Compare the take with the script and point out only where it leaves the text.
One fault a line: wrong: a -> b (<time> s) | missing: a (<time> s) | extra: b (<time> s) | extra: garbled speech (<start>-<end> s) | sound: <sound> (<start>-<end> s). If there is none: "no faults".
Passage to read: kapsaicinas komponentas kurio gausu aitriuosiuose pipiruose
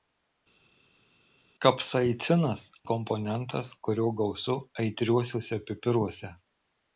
no faults